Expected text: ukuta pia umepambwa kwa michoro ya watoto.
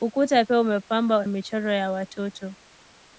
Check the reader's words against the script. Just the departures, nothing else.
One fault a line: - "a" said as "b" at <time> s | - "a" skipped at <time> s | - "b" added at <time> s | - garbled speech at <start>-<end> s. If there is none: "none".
- "kwa" skipped at 1.2 s